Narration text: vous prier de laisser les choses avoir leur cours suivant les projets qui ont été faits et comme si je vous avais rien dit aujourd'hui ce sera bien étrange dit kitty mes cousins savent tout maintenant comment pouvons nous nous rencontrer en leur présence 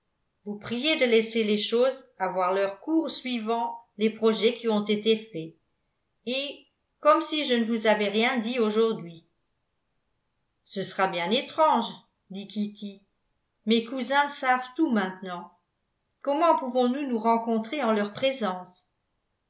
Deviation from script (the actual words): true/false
true